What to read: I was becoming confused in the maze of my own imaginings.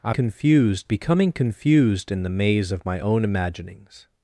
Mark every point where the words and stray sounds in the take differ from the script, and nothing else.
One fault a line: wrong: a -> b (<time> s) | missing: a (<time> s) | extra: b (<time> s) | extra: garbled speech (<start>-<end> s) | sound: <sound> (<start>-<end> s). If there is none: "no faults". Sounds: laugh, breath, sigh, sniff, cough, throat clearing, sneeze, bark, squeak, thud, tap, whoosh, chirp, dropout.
wrong: was -> confused (0.1 s)